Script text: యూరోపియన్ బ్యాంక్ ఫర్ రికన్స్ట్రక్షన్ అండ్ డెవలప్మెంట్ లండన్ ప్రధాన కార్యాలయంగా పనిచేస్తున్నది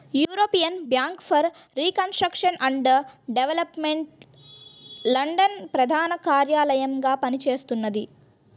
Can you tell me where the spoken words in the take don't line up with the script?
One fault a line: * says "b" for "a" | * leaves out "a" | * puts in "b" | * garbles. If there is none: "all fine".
all fine